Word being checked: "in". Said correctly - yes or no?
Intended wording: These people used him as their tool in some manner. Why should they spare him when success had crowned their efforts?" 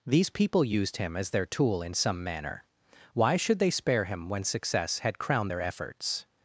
yes